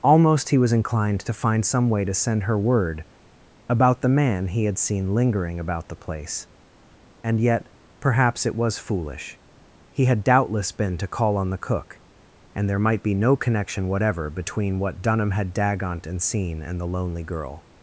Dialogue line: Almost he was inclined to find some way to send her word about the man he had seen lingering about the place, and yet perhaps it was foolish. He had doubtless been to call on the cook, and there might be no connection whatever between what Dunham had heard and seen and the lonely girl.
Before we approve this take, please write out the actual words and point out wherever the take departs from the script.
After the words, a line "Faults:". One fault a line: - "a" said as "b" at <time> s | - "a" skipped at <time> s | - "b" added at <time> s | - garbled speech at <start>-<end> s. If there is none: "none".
Almost he was inclined to find some way to send her word about the man he had seen lingering about the place, and yet perhaps it was foolish. He had doubtless been to call on the cook, and there might be no connection whatever between what Dunham had dagont and seen and the lonely girl.
Faults:
- "heard" said as "dagont" at 15.5 s